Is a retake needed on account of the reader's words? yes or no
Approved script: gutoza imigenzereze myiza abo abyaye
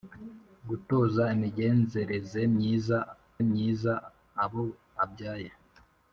yes